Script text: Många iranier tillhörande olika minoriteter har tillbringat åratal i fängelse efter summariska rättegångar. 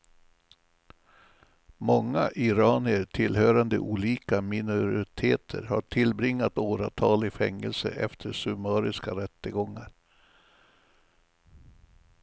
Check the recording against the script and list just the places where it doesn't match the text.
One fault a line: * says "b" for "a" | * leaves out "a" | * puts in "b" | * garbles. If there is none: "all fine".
all fine